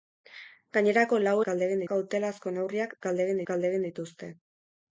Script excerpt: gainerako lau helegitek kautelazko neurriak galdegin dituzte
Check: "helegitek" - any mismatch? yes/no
yes